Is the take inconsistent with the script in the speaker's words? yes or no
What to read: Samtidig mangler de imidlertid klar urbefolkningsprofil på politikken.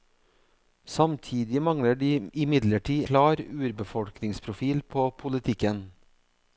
no